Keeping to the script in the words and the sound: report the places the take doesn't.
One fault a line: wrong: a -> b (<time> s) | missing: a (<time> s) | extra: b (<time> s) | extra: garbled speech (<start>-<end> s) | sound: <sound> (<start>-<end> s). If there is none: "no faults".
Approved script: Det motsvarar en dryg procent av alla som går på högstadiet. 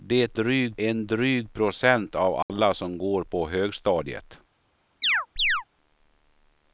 wrong: motsvarar -> dryg (0.3 s)
sound: dropout (2.4-2.5 s)
sound: chirp (5.0-5.6 s)